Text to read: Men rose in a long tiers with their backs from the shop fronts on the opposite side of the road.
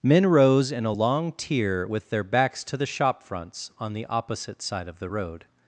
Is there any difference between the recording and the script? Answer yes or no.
yes